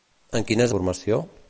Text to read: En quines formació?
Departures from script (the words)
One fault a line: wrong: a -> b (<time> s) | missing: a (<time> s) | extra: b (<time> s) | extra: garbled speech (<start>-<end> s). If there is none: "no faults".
no faults